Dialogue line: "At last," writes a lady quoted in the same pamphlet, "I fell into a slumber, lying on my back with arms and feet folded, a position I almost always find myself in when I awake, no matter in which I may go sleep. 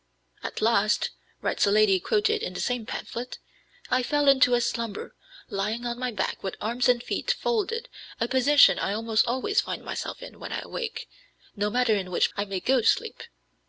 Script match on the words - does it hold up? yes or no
yes